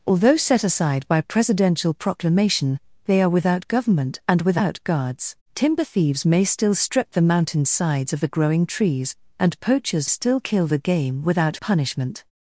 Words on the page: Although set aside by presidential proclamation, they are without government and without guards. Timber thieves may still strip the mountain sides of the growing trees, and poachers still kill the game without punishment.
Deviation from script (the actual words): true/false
false